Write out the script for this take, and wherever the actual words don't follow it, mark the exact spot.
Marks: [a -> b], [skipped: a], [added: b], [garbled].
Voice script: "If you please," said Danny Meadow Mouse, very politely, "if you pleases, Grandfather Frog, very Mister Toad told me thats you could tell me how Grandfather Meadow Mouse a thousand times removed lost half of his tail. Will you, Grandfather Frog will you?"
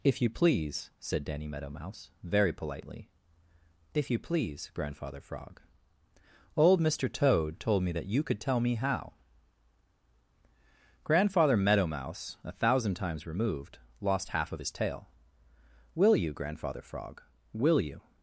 "If you please," said Danny Meadow Mouse, very politely, "if you [pleases, -> please] Grandfather Frog, [very -> old] Mister Toad told me [thats -> that] you could tell me how Grandfather Meadow Mouse a thousand times removed lost half of his tail. Will you, Grandfather Frog will you?"